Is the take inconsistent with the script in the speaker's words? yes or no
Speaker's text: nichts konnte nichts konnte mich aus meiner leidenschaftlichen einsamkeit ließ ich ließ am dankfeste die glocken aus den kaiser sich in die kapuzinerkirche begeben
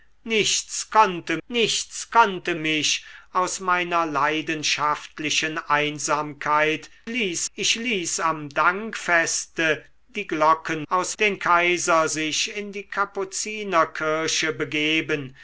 no